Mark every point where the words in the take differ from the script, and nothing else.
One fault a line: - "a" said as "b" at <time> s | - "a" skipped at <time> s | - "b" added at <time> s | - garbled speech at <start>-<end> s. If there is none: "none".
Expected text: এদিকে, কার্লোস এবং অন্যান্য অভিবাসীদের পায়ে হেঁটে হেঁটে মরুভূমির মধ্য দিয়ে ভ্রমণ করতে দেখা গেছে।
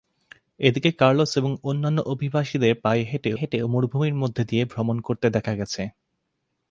none